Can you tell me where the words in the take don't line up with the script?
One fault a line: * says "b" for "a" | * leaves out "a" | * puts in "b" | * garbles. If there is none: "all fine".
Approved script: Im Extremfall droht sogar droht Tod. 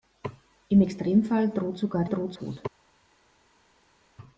all fine